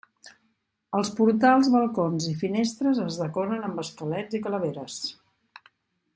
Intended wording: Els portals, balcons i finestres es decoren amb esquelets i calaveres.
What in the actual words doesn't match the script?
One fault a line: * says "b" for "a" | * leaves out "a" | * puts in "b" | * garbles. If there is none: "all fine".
all fine